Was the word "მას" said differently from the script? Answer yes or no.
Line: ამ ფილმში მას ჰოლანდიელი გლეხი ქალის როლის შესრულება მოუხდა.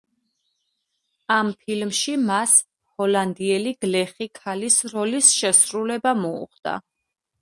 no